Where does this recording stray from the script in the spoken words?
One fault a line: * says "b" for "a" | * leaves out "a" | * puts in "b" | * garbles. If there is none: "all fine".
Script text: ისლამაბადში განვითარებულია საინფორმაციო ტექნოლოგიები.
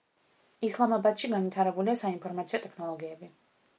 all fine